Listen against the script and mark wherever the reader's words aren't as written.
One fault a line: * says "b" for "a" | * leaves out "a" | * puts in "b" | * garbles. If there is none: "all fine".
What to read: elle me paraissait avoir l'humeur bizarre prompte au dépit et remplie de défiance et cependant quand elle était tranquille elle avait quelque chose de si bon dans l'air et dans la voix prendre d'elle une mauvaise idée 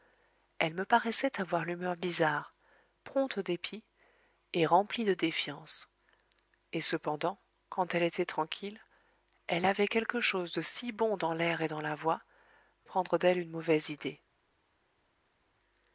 all fine